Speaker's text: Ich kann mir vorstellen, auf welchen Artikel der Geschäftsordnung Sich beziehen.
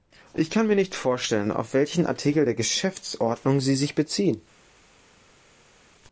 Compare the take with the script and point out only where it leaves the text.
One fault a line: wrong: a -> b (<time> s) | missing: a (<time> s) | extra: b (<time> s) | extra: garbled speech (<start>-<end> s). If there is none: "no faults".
extra: nicht (0.8 s)
extra: Sie (3.6 s)